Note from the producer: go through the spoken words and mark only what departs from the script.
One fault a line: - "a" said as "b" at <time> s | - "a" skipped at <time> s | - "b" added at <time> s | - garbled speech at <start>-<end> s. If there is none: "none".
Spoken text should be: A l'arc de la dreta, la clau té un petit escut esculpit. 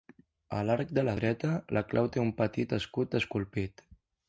none